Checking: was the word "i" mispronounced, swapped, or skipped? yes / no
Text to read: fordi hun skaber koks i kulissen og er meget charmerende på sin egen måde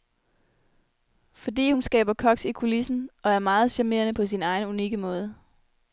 no